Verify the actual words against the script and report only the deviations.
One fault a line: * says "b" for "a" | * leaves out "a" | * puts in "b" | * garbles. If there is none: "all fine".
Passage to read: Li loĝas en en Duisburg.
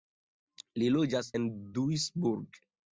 * leaves out "en"